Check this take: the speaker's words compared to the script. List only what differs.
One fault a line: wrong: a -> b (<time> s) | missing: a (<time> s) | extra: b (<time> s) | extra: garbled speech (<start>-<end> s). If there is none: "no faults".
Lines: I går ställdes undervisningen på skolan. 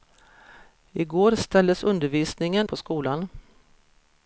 no faults